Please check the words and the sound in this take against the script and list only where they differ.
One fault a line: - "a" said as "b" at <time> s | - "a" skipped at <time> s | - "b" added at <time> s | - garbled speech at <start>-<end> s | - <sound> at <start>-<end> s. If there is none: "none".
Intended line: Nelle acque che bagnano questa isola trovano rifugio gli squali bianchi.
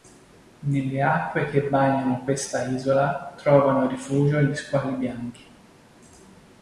none